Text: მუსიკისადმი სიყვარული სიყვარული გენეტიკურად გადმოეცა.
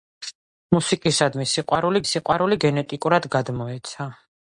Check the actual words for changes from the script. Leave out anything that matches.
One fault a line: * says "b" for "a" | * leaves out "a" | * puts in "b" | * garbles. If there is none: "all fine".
all fine